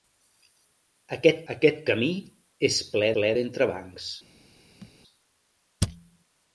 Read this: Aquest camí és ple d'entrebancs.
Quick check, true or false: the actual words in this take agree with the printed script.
false